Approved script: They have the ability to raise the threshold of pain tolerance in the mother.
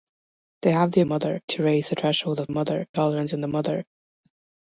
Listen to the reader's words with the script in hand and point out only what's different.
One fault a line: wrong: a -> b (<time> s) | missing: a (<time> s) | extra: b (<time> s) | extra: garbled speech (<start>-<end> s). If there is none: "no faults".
wrong: ability -> mother (1.0 s)
wrong: pain -> mother (2.5 s)